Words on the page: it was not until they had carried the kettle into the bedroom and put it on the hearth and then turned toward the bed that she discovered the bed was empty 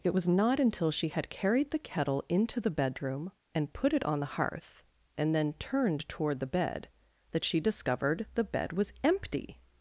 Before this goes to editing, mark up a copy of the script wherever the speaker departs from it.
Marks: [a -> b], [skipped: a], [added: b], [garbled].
it was not until [they -> she] had carried the kettle into the bedroom and put it on the hearth and then turned toward the bed that she discovered the bed was empty